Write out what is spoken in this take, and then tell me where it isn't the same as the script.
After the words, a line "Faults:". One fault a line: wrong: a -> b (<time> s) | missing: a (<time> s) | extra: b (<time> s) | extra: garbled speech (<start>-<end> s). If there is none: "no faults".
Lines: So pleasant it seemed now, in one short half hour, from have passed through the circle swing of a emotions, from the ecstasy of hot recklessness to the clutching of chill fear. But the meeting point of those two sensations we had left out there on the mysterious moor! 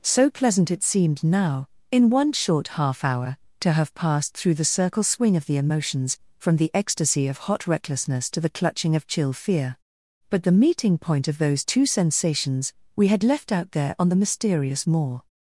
So pleasant it seemed now, in one short half hour, to have passed through the circle swing of the emotions, from the ecstasy of hot recklessness to the clutching of chill fear. But the meeting point of those two sensations we had left out there on the mysterious moor!
Faults:
wrong: from -> to (3.6 s)
wrong: a -> the (5.5 s)